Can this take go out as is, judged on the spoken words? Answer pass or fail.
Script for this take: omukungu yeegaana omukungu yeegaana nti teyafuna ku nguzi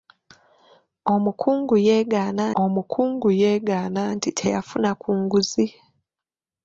pass